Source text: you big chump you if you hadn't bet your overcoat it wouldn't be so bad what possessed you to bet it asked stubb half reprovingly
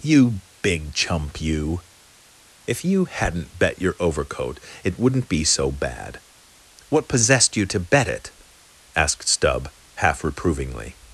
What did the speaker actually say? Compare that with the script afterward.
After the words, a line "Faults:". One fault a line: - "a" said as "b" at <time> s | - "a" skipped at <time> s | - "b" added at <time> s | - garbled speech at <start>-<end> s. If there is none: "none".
you big chump you if you hadn't bet your overcoat it wouldn't be so bad what possessed you to bet it asked stubb half reprovingly
Faults:
none